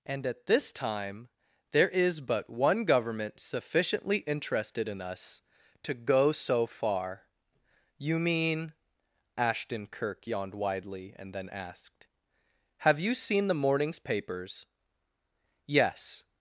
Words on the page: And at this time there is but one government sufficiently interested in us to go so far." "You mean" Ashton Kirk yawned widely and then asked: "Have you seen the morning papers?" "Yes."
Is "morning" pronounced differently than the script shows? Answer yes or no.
yes